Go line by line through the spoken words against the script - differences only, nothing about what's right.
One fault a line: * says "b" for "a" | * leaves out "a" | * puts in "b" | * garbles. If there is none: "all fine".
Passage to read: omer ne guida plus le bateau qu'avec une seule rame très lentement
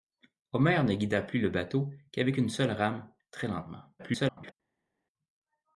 * garbles